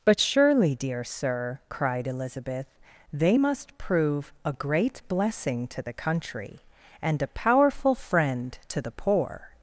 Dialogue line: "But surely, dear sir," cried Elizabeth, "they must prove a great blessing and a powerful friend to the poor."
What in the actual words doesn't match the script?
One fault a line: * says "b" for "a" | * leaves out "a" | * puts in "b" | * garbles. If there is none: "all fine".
* puts in "to the country"